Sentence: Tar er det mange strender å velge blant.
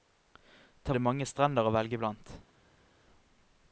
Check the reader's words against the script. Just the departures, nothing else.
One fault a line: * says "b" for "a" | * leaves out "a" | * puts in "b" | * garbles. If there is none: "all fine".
all fine